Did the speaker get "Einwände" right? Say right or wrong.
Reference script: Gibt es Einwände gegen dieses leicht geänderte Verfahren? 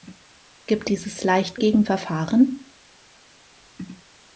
wrong